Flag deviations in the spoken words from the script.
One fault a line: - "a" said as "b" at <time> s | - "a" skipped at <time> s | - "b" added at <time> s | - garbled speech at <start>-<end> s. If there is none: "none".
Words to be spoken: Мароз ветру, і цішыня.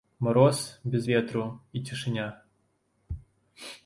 - "без" added at 0.8 s